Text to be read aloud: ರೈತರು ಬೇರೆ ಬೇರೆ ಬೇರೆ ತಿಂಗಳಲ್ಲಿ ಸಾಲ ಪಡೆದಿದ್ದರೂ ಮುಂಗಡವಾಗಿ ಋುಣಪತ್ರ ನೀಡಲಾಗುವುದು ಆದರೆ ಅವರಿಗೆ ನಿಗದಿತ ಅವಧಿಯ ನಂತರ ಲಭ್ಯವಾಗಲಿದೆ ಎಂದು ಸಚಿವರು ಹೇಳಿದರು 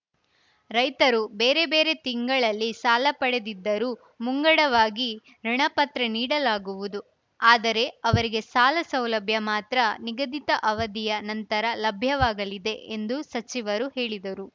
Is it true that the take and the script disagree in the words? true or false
true